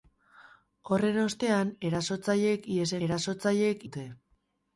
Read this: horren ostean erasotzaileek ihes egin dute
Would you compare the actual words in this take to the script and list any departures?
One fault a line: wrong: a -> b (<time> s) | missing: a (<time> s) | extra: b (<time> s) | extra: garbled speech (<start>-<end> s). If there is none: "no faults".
wrong: egin -> erasotzaileek (3.1 s)